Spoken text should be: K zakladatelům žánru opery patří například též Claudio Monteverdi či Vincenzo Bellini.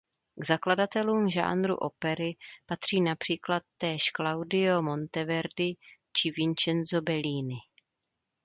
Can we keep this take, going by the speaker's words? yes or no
yes